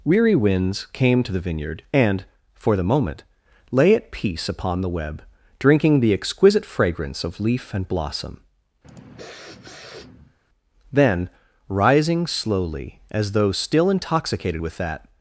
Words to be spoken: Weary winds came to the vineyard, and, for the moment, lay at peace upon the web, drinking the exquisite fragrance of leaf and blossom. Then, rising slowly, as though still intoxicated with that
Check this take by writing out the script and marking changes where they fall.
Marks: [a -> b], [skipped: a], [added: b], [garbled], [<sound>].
Weary winds came to the vineyard, and, for the moment, lay at peace upon the web, drinking the exquisite fragrance of leaf and blossom. [sniff] Then, rising slowly, as though still intoxicated with that